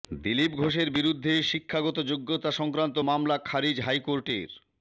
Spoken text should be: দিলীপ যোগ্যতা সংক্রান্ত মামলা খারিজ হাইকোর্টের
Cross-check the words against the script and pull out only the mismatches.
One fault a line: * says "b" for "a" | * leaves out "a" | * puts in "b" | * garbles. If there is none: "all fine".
* puts in "ঘোষের বিরুদ্ধে শিক্ষাগত"